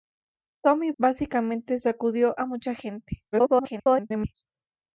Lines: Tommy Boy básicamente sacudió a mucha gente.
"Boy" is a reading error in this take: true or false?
true